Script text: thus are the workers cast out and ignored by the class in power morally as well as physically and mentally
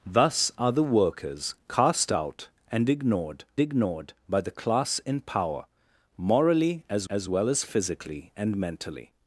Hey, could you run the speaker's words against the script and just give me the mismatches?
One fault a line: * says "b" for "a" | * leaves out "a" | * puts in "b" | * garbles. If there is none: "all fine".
* puts in "ignored"
* puts in "as"